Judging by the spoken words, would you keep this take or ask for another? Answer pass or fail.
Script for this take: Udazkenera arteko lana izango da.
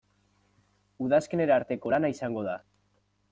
pass